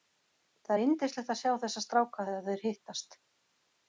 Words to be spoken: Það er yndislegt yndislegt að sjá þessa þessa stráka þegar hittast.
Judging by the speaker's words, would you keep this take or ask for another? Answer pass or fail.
fail